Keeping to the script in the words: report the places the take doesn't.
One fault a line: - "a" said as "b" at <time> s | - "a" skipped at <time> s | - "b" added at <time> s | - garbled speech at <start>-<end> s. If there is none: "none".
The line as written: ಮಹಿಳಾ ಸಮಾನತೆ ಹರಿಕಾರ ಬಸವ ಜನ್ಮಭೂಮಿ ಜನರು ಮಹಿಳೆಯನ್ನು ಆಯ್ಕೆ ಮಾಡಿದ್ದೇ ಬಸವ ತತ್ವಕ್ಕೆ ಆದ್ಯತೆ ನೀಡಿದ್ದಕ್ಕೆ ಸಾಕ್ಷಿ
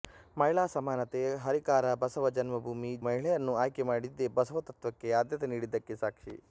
- "ಜನರು" skipped at 2.9 s